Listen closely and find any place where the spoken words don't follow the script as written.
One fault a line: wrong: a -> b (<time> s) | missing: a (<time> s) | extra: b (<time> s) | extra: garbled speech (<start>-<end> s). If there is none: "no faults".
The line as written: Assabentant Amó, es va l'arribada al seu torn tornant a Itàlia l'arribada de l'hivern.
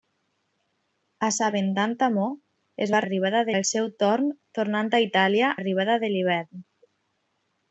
no faults